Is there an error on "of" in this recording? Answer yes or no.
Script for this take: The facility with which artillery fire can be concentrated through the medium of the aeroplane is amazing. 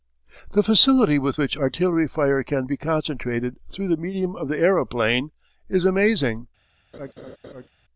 no